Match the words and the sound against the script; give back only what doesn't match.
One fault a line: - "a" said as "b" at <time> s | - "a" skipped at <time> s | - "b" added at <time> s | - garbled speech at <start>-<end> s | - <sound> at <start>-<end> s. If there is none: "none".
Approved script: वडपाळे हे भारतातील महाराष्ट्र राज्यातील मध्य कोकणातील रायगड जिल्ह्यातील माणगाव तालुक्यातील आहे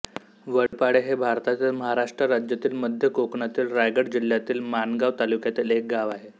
- dropout at 0.7-0.7 s
- "एक गाव" added at 5.7 s